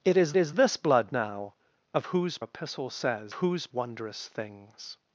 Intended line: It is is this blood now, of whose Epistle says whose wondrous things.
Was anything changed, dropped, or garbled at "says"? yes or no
no